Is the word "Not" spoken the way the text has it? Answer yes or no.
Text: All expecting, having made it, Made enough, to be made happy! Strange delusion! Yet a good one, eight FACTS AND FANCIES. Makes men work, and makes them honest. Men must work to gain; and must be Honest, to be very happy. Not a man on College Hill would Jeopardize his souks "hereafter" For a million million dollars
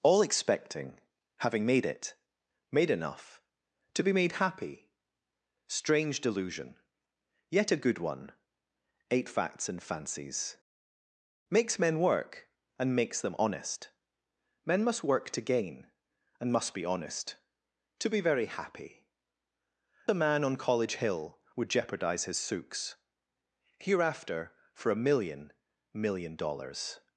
no